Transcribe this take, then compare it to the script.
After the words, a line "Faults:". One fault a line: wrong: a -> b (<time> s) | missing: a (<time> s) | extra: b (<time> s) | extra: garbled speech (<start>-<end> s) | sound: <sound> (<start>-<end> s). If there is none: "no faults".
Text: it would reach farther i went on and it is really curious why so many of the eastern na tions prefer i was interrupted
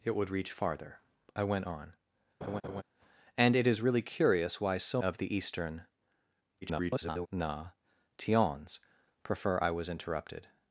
it would reach farther i went on and it is really curious why so of the eastern [garbled] na tions prefer i was interrupted
Faults:
sound: laugh (2.4-2.8 s)
missing: many (5.0 s)
extra: garbled speech (6.6-7.3 s)